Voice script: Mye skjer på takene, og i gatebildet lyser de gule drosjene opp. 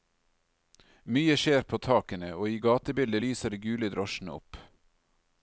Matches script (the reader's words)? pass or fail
pass